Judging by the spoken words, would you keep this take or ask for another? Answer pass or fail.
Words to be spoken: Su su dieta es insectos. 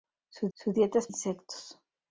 pass